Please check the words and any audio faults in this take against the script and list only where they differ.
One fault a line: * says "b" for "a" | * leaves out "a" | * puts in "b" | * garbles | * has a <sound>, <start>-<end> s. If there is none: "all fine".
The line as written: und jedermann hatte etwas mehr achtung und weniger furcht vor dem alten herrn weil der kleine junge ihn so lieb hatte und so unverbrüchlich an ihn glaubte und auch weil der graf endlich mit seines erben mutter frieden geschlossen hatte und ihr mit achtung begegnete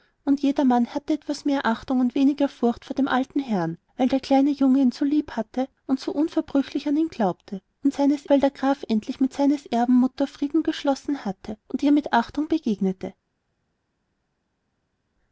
* says "seines" for "auch"